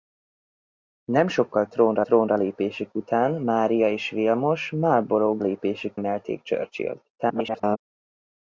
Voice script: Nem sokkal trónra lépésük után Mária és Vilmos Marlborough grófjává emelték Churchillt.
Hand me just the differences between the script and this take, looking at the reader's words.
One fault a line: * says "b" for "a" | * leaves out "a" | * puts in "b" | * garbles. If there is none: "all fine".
* puts in "trónra"
* says "lépésük" for "grófjává"
* garbles